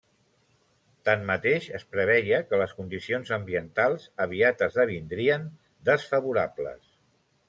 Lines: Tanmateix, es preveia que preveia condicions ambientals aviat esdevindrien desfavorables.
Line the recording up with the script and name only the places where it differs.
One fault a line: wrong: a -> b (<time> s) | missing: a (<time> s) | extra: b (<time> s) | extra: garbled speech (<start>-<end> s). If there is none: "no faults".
wrong: preveia -> les (2.6 s)